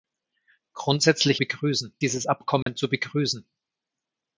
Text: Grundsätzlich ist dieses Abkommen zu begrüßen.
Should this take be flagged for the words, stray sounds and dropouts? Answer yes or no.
yes